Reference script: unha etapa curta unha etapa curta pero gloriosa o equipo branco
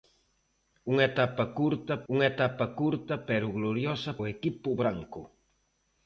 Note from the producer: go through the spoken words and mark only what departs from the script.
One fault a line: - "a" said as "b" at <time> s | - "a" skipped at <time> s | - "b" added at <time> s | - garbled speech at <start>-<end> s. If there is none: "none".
none